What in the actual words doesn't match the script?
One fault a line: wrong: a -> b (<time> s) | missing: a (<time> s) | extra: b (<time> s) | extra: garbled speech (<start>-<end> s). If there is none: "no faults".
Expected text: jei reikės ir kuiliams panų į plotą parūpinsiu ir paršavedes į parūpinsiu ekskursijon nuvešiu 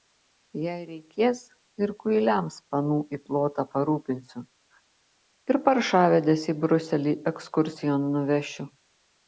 wrong: parūpinsiu -> briuselį (6.7 s)